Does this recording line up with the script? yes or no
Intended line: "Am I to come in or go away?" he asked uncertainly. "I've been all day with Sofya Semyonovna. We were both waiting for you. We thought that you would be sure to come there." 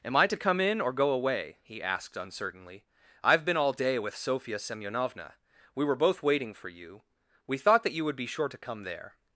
yes